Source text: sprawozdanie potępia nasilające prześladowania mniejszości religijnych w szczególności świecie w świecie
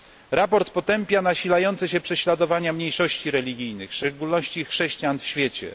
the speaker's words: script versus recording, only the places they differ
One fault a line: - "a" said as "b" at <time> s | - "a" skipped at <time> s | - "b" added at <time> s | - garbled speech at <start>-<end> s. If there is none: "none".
- "się" added at 1.9 s
- "świecie" said as "chrześcijan" at 4.7 s